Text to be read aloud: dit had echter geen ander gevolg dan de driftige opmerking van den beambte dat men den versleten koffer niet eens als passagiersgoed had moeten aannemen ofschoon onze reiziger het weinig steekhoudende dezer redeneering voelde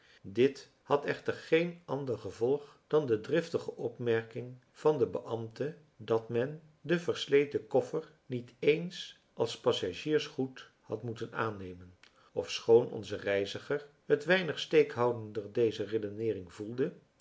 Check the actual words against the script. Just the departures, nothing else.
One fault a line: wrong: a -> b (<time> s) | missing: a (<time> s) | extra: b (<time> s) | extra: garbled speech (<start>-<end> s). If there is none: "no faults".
no faults